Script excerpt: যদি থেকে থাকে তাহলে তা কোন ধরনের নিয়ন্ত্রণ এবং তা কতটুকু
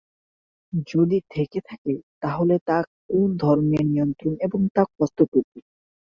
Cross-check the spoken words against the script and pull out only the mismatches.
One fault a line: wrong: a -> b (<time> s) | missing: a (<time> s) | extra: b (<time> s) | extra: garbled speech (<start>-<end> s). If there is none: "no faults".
no faults